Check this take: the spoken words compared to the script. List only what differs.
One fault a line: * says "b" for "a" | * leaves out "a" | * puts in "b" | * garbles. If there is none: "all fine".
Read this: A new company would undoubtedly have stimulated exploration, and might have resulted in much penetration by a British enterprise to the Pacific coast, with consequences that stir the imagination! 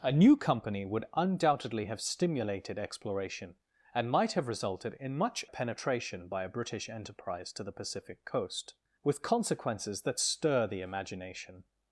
all fine